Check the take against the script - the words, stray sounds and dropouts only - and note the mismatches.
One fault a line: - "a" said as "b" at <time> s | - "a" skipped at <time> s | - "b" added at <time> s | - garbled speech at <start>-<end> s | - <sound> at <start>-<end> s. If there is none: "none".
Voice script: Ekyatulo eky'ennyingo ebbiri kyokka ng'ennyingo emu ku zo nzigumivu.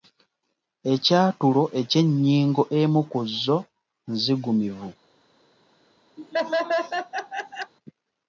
- "ebbiri kyokka ng'ennyingo" skipped at 2.6 s
- laugh at 6.2-7.7 s